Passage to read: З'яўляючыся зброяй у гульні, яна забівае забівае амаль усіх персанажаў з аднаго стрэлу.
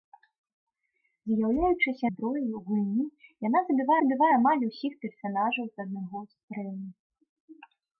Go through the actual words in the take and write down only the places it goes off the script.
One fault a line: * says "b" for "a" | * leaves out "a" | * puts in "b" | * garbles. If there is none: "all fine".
all fine